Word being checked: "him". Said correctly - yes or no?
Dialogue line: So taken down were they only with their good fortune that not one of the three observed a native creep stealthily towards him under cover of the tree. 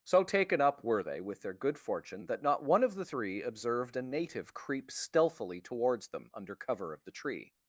no